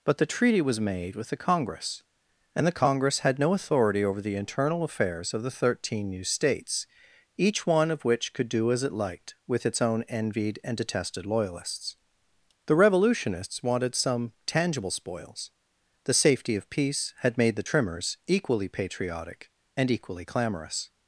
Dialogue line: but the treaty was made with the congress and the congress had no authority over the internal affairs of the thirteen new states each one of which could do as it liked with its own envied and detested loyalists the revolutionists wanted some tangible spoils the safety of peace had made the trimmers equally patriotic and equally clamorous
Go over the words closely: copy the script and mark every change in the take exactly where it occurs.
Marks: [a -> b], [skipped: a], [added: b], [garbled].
but the treaty was made with the congress and the congress had no authority over the internal affairs of the thirteen new states each one of which could do as it liked with its own envied and detested loyalists the revolutionists wanted some tangible spoils the safety of peace had made the trimmers equally patriotic and equally clamorous